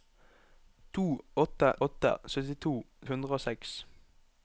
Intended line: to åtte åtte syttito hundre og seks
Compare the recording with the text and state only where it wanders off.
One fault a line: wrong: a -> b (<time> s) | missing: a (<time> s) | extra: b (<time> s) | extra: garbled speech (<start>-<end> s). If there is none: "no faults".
no faults